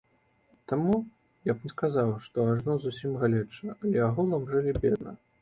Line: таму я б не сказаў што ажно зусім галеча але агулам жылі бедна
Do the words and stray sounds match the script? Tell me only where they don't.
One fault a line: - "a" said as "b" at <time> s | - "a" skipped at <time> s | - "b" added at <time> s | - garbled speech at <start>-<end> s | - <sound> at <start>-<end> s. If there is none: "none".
none